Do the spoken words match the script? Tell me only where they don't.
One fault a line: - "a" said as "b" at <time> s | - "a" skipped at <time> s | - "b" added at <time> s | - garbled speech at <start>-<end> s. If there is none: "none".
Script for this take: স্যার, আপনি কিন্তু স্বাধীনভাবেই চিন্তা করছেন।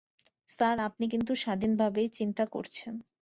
none